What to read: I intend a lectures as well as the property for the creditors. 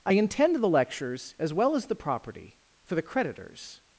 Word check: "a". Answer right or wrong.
wrong